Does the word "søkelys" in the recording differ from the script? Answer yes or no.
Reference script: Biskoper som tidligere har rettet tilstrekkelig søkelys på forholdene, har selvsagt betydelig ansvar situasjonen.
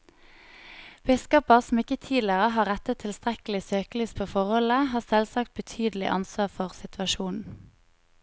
no